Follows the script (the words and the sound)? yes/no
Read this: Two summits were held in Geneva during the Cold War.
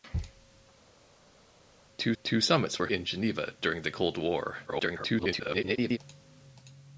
no